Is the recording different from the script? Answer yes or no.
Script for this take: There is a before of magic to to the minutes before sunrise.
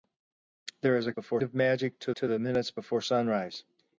no